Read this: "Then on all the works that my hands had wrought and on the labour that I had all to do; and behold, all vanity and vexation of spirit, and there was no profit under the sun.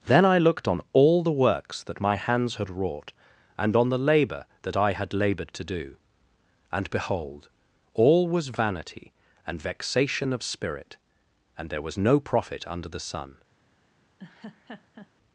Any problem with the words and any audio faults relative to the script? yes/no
yes